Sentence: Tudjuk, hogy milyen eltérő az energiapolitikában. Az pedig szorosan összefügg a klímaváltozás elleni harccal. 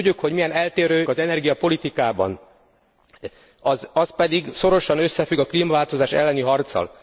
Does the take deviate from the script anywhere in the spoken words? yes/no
no